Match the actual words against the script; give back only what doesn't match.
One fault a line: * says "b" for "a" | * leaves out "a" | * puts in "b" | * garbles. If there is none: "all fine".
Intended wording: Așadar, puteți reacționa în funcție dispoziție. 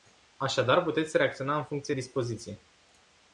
all fine